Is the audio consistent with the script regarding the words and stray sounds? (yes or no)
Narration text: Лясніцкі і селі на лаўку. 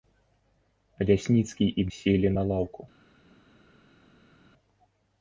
yes